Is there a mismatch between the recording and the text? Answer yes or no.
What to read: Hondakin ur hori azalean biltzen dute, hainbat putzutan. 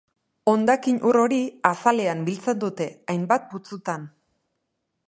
no